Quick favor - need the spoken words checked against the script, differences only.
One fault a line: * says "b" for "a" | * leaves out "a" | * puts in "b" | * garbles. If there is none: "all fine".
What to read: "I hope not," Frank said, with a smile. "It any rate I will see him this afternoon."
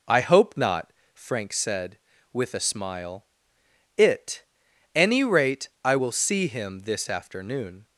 all fine